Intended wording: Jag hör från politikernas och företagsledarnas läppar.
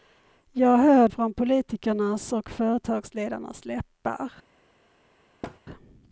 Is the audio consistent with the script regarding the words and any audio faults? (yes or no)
no